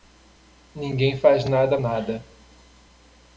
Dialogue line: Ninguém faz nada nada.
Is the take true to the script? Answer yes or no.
yes